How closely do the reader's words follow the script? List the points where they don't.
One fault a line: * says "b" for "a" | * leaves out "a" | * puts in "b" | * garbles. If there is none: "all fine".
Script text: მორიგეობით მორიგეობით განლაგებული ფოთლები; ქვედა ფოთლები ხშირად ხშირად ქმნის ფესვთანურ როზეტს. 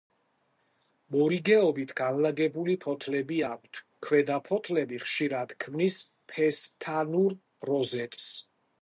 * leaves out "მორიგეობით"
* puts in "აქვთ"
* leaves out "ხშირად"